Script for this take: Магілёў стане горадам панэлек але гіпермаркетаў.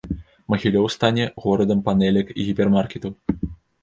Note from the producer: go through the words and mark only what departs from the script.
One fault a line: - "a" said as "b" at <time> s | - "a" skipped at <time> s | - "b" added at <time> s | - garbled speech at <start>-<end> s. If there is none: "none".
- "але" said as "і" at 2.3 s